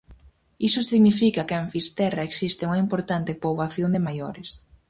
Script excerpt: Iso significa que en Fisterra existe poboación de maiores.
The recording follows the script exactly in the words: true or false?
false